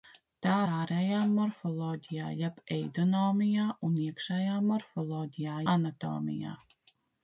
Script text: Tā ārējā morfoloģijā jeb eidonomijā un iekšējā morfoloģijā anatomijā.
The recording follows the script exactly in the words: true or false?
true